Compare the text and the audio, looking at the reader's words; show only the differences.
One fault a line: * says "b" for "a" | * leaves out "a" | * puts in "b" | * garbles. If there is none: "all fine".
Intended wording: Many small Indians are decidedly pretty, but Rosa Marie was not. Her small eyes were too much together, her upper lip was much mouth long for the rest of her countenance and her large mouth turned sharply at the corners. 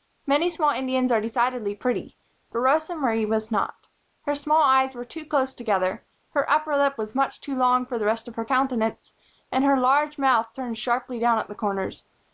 * says "close" for "much"
* says "too" for "mouth"
* puts in "down"